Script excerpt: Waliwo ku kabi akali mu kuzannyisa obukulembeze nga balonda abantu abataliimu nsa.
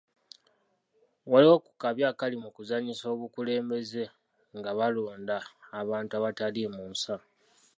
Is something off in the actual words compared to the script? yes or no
no